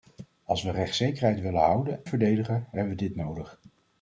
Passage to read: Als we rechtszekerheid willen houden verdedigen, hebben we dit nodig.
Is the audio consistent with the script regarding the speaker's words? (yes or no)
yes